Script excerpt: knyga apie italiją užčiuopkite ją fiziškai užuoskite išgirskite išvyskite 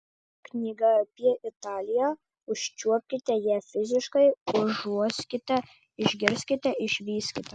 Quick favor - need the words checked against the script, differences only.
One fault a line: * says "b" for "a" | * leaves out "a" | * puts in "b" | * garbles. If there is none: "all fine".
all fine